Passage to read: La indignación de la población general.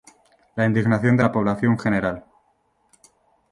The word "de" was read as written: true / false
true